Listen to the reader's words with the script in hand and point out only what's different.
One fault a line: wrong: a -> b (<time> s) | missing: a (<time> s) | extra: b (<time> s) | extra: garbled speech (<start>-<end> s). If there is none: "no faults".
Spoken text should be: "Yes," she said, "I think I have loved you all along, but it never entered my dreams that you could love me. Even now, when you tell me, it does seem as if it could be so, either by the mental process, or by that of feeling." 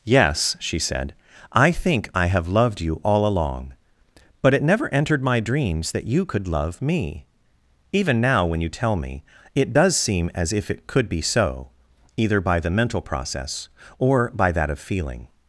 no faults